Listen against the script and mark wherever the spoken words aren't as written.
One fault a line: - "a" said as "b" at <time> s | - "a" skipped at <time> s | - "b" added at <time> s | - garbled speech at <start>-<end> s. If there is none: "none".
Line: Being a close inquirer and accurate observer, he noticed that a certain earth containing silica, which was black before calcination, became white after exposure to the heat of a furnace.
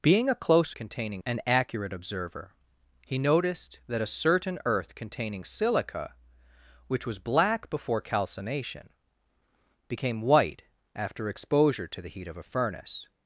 - "inquirer" said as "containing" at 0.7 s